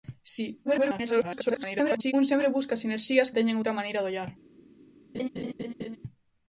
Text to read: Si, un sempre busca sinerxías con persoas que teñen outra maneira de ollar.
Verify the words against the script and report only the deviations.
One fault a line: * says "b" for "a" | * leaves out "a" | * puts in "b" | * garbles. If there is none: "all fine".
* garbles
* leaves out "con persoas que"